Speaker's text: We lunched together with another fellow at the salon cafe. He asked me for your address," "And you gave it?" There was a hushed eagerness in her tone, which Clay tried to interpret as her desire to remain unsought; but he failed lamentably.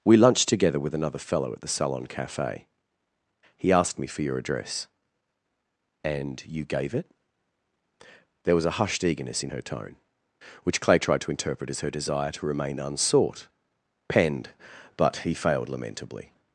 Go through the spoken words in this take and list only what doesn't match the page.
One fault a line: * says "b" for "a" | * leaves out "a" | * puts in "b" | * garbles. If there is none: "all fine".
* puts in "penned"